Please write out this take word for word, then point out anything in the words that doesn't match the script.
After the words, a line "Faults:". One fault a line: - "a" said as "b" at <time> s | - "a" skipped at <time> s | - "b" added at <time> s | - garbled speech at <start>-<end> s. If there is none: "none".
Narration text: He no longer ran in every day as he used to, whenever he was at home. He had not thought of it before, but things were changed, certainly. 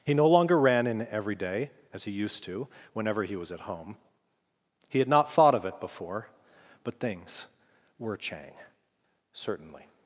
He no longer ran in every day as he used to, whenever he was at home. He had not thought of it before, but things were chang, certainly.
Faults:
- "changed" said as "chang" at 8.2 s